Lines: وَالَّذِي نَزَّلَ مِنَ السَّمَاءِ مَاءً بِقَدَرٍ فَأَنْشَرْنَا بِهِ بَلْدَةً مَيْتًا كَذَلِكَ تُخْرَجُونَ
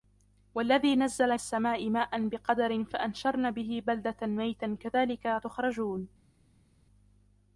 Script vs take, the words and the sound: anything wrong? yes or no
yes